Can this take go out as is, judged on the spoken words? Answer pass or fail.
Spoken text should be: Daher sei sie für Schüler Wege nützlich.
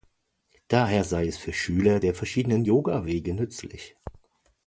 fail